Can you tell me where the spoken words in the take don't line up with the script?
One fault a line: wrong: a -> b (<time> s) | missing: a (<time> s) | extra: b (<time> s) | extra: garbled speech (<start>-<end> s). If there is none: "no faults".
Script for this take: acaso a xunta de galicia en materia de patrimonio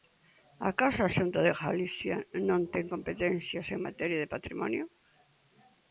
extra: non ten competencias (2.5 s)